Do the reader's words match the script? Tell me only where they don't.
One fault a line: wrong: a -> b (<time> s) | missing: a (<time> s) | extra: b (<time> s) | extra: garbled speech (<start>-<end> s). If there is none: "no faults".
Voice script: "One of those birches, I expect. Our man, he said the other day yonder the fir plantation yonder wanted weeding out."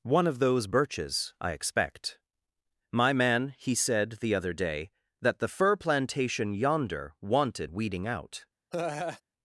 wrong: Our -> My (2.9 s)
wrong: yonder -> that (5.2 s)